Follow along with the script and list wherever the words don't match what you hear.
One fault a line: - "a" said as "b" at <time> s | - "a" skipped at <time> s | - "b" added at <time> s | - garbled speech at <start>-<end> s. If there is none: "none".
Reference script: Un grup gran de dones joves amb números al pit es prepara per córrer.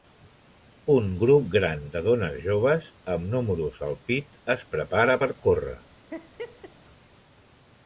none